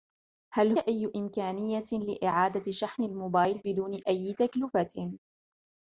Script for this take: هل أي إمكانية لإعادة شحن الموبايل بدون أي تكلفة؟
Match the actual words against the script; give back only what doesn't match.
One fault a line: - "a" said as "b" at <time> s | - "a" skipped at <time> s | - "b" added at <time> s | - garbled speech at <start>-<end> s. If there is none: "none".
none